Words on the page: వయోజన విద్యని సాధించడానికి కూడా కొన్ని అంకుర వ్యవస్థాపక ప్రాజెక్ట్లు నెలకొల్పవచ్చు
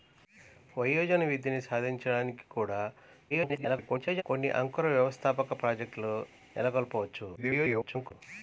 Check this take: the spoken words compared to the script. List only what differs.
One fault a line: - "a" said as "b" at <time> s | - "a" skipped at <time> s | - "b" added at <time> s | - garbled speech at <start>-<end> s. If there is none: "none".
- garbled speech at 3.3-4.2 s
- garbled speech at 7.4-8.1 s